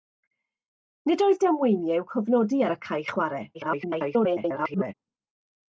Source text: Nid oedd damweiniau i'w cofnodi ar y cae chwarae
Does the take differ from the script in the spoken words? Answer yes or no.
yes